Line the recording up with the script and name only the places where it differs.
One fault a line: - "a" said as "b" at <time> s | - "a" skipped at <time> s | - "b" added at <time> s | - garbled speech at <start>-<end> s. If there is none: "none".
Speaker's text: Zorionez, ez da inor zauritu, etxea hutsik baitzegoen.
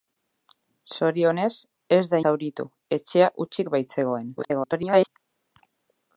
- "inor" skipped at 2.2 s
- garbled speech at 4.4-5.1 s